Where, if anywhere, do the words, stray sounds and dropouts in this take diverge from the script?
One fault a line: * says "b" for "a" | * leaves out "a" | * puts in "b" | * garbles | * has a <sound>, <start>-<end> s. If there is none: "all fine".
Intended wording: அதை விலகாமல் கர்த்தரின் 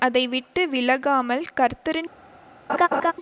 * puts in "விட்டு"
* has a laugh, 2.7-3.1 s